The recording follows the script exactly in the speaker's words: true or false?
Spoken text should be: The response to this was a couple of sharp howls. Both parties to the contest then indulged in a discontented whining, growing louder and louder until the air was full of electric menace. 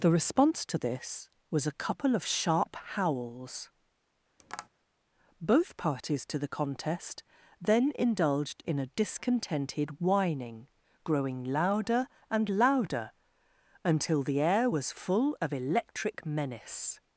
true